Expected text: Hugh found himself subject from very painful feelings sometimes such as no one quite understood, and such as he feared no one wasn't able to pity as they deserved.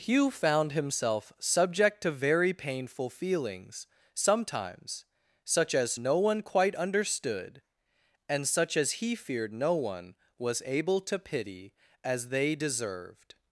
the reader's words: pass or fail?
fail